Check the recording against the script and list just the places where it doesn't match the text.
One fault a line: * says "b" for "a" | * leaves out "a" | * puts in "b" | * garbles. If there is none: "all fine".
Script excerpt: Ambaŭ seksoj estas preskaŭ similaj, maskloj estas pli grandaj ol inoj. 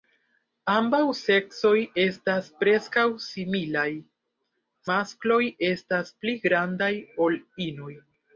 all fine